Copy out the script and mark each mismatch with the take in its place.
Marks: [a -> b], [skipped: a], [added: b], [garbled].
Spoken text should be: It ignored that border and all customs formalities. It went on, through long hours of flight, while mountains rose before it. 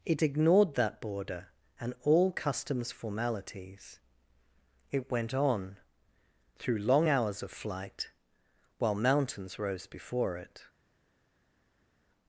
It ignored that border and all customs formalities. It went on, through long hours of flight, while mountains rose before it.